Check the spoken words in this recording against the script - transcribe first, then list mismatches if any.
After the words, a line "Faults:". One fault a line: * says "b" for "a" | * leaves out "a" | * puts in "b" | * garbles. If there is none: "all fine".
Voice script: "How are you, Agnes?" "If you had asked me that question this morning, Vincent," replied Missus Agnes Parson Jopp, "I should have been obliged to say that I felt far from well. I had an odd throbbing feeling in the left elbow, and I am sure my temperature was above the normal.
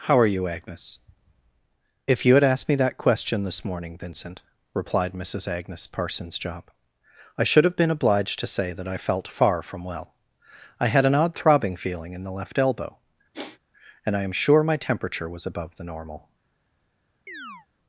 "How are you, Agnes?" "If you had asked me that question this morning, Vincent," replied Missus Agnes Parsons Jopp, "I should have been obliged to say that I felt far from well. I had an odd throbbing feeling in the left elbow, and I am sure my temperature was above the normal.
Faults:
* says "Parsons" for "Parson"